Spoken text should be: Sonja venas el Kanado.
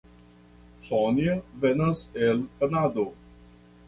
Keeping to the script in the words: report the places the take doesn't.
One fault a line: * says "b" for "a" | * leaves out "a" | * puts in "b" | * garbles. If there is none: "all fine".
all fine